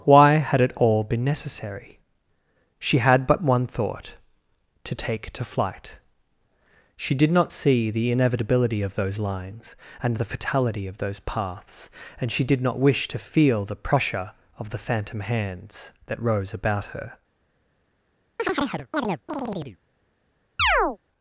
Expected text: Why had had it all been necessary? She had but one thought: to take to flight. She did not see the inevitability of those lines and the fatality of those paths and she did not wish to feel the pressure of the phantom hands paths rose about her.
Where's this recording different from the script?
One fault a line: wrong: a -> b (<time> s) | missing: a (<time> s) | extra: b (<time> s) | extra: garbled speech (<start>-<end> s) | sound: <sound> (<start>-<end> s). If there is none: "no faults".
missing: had (0.6 s)
wrong: paths -> that (16.1 s)
sound: chirp (18.4-19.8 s)
sound: chirp (20.6-21.0 s)